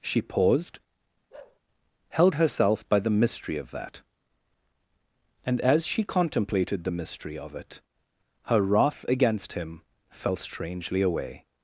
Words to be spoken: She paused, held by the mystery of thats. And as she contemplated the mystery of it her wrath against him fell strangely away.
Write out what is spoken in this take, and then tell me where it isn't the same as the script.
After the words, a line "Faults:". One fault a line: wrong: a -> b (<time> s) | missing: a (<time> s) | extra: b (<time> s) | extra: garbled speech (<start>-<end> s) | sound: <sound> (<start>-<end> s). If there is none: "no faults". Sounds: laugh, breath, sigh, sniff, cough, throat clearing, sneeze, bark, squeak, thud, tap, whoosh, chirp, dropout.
She paused, held herself by the mystery of that. And as she contemplated the mystery of it her wrath against him fell strangely away.
Faults:
sound: bark (1.3-1.6 s)
extra: herself (2.3 s)
wrong: thats -> that (3.7 s)